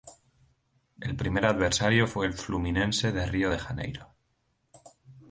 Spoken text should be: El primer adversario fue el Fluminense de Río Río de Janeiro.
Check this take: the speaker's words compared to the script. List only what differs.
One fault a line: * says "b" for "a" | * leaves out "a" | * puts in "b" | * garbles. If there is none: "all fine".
* leaves out "Río"